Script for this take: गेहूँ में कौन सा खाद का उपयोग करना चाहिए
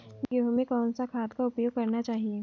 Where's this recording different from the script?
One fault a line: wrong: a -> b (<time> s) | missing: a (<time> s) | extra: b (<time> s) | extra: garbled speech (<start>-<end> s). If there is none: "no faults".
no faults